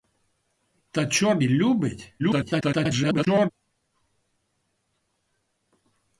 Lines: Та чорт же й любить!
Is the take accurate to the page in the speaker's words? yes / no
no